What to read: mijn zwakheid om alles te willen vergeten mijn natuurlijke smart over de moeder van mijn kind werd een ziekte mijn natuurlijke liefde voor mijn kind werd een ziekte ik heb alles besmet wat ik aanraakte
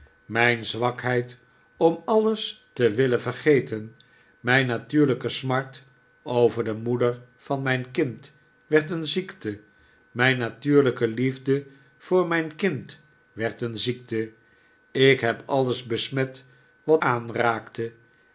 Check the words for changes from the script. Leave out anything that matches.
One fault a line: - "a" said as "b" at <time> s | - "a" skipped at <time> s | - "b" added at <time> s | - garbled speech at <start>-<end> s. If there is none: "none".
- "ik" skipped at 17.0 s